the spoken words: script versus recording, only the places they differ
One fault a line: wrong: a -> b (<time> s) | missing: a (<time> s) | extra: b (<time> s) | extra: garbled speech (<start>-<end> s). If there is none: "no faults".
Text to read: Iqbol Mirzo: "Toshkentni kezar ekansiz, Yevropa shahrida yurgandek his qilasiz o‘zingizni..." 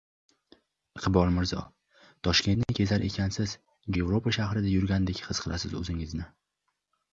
no faults